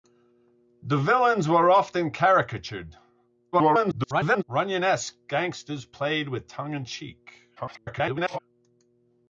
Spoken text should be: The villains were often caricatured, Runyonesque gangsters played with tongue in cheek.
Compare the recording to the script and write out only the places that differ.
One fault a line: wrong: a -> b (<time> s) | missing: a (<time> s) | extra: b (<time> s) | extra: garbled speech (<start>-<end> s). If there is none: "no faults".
extra: garbled speech (3.5-4.4 s)
extra: garbled speech (7.6-8.4 s)